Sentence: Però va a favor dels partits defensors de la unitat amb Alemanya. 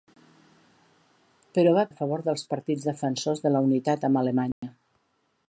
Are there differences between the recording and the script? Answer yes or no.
no